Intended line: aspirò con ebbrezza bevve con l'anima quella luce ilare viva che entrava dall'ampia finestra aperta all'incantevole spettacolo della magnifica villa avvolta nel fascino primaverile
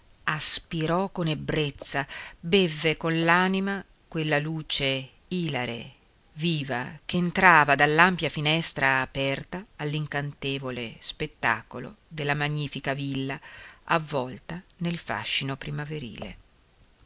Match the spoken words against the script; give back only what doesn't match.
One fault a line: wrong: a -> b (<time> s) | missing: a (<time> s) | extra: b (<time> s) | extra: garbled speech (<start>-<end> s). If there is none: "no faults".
no faults